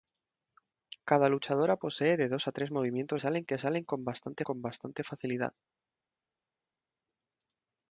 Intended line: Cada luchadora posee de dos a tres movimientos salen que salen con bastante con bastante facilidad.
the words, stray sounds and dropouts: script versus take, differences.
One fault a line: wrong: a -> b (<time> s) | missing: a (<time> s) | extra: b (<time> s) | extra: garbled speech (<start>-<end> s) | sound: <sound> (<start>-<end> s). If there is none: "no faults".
no faults